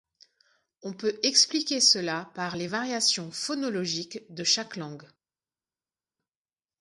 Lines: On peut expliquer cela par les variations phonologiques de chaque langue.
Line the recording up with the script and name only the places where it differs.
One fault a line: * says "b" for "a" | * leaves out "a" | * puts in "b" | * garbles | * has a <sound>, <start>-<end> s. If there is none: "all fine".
all fine